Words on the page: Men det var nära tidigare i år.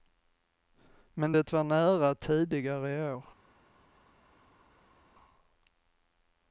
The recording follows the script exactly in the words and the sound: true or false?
true